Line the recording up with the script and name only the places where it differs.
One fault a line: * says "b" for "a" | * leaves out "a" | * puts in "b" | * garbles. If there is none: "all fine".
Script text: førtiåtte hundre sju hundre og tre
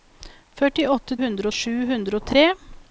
all fine